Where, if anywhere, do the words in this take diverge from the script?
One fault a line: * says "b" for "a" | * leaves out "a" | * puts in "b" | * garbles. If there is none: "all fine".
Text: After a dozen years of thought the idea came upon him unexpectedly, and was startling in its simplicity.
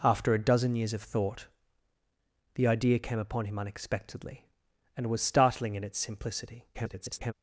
* garbles